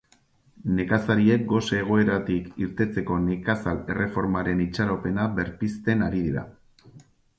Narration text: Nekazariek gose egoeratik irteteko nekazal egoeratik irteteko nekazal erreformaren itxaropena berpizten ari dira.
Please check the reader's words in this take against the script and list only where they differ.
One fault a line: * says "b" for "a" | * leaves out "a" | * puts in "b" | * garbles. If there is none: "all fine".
* leaves out "egoeratik irteteko nekazal"